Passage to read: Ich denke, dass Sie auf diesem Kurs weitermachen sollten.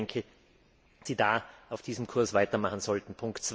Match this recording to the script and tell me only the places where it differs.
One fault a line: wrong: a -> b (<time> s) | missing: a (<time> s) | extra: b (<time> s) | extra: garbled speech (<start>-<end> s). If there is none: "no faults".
missing: dass (0.3 s)